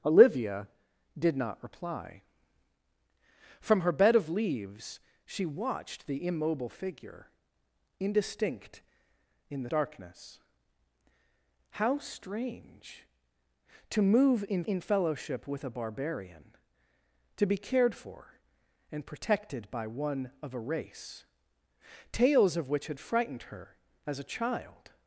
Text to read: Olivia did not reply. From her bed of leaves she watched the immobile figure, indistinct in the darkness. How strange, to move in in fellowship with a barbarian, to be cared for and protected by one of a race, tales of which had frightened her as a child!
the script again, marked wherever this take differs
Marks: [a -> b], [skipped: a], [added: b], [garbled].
Olivia did not reply. From her bed of leaves she watched the immobile figure, indistinct in the darkness. How strange, to move in in fellowship with a barbarian, to be cared for and protected by one of a race, tales of which had frightened her as a child!